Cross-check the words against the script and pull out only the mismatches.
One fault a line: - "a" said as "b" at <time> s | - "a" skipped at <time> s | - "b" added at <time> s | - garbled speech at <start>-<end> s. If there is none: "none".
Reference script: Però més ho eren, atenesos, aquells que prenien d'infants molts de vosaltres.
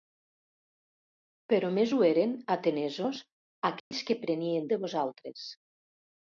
- "d'infants molts" skipped at 4.7 s